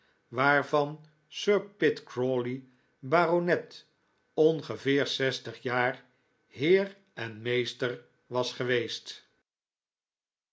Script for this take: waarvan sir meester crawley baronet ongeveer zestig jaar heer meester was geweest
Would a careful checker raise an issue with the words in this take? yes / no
yes